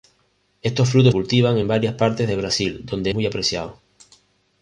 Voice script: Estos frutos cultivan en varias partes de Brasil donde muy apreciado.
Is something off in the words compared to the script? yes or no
no